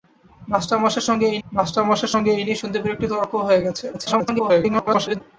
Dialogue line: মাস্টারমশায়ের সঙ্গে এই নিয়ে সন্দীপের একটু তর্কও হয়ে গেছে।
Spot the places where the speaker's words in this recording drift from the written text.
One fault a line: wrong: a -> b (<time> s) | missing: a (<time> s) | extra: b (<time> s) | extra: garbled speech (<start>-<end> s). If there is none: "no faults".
extra: মাস্টারমশায়ের সঙ্গে এই (1.5 s)
extra: garbled speech (3.9-5.2 s)